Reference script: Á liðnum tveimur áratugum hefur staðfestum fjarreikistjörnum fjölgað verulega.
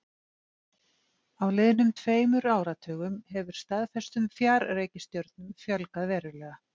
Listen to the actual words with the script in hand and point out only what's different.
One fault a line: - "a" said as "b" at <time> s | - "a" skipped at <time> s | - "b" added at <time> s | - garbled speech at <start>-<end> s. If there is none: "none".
none